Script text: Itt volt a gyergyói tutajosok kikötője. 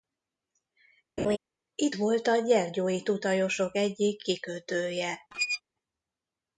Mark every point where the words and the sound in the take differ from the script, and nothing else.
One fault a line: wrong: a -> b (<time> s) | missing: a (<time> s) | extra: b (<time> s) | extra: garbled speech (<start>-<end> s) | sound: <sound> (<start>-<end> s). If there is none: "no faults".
sound: laugh (1.2-1.4 s)
extra: egyik (3.7 s)
sound: squeak (5.3-5.6 s)